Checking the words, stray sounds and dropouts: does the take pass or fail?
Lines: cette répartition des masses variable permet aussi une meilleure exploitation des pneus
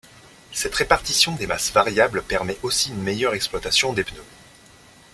pass